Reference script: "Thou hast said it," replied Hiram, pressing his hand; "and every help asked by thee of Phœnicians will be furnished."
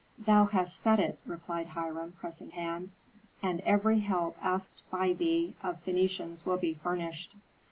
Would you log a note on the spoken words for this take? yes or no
yes